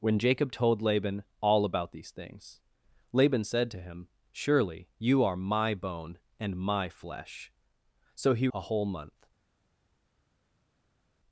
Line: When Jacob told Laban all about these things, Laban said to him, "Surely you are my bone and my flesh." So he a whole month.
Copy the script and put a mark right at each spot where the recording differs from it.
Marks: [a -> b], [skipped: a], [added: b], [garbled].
When Jacob told Laban all about these things, Laban said to him, "Surely you are my bone and my flesh." So he a whole month.